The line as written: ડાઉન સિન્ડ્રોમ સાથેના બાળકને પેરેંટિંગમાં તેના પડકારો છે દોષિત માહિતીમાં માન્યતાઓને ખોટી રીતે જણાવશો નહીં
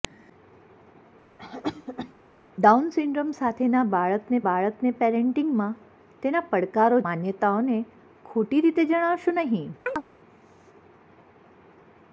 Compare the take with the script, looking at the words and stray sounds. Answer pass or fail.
fail